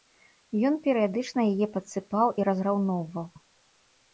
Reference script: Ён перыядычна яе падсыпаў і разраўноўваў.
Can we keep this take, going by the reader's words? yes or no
yes